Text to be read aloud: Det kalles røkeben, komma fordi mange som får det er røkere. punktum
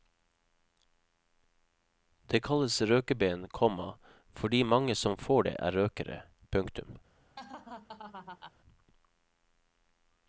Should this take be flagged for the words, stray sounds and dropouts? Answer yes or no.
yes